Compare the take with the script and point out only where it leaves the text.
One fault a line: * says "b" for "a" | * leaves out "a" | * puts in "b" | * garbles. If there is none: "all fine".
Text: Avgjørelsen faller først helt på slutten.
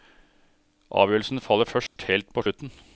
all fine